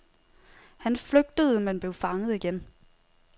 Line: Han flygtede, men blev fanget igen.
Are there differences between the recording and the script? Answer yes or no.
no